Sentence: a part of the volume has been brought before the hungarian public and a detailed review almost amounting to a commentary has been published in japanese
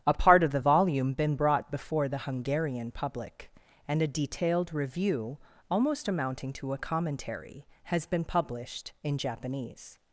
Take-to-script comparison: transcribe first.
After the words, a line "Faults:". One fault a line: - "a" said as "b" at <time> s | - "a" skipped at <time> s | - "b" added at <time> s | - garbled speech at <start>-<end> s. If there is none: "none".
a part of the volume been brought before the hungarian public and a detailed review almost amounting to a commentary has been published in japanese
Faults:
- "has" skipped at 1.1 s